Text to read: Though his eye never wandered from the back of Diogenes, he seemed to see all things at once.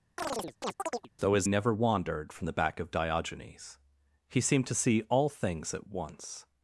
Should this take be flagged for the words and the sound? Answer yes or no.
yes